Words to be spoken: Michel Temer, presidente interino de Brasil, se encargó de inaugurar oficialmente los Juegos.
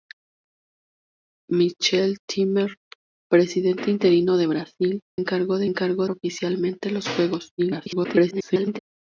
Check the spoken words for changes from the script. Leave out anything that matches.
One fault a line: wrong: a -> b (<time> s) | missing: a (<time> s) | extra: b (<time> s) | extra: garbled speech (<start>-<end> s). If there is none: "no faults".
missing: se (5.0 s)
wrong: inaugurar -> encargó (5.6 s)
extra: garbled speech (7.6-8.8 s)